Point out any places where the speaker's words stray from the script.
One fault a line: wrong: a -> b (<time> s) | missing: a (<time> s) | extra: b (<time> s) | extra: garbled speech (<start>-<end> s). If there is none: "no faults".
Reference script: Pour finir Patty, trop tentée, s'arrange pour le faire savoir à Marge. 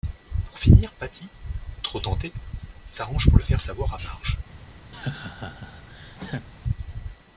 no faults